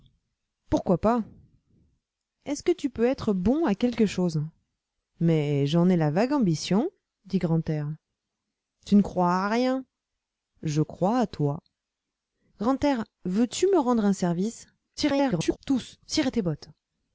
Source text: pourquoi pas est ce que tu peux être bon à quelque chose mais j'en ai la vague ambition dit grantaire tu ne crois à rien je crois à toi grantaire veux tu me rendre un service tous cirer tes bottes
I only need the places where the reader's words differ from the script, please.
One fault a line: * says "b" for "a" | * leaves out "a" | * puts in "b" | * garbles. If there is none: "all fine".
* garbles